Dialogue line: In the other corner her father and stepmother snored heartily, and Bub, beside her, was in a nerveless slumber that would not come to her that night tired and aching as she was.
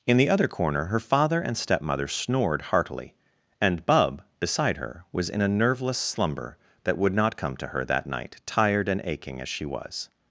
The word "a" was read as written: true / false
true